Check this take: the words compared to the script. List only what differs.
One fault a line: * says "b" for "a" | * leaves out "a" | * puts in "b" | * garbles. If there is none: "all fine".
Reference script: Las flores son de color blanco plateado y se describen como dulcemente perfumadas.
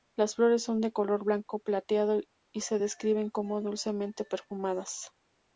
all fine